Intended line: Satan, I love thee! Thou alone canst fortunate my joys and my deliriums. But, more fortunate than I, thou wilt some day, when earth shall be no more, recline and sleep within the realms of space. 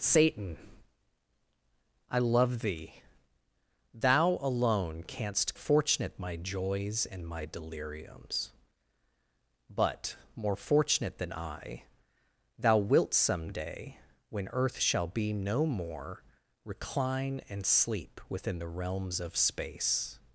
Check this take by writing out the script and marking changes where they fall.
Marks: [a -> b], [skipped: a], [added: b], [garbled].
Satan, I love thee! Thou alone canst fortunate my joys and my deliriums. But, more fortunate than I, thou wilt some day, when earth shall be no more, recline and sleep within the realms of space.